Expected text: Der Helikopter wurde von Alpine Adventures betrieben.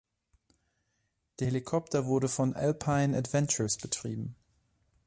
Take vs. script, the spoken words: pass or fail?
pass